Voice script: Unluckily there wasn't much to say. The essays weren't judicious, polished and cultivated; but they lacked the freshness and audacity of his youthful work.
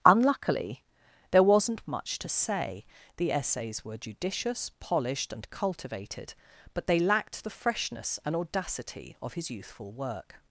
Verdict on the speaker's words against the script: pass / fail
fail